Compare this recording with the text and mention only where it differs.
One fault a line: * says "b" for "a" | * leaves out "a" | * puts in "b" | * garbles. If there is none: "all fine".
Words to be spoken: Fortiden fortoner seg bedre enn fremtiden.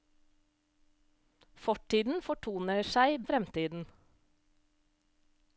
* leaves out "bedre"